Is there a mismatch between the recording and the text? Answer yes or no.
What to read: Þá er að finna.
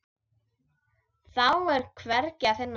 yes